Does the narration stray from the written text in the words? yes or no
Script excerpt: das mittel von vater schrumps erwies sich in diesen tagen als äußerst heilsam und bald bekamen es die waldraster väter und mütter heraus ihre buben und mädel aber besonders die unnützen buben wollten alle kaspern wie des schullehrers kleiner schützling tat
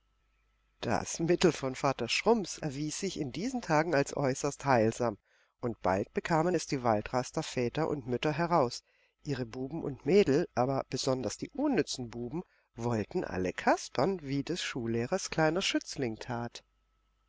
no